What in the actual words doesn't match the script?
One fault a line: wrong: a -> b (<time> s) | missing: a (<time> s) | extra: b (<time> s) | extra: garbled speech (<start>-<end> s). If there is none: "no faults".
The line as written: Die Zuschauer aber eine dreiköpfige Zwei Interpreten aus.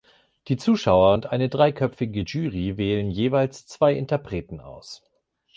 wrong: aber -> und (1.1 s)
extra: Jury wählen jeweils (2.2 s)